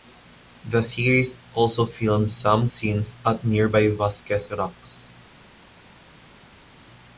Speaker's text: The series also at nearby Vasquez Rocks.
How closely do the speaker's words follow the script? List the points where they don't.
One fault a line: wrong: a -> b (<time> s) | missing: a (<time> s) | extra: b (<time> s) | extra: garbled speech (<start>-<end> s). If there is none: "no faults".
extra: filmed some scenes (1.9 s)